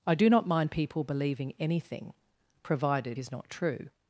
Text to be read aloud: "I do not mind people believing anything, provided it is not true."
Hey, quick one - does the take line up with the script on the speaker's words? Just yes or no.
no